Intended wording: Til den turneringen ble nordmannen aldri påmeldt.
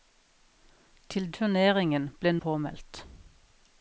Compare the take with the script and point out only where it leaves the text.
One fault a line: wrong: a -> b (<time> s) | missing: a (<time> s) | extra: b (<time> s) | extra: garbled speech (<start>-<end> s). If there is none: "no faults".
missing: den (1.3 s)
missing: nordmannen aldri (2.3 s)